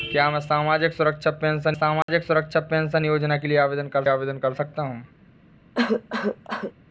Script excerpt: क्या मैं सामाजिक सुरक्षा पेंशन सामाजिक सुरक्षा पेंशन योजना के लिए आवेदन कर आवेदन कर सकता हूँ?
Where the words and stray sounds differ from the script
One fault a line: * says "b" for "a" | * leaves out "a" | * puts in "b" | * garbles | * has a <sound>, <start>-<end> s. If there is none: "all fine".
* has a dropout, 2.0-2.1 s
* has a cough, 5.7-6.7 s